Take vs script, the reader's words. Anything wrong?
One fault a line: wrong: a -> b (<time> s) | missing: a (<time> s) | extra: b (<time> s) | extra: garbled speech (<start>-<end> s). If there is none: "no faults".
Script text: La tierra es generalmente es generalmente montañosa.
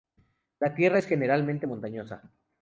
missing: es generalmente (1.7 s)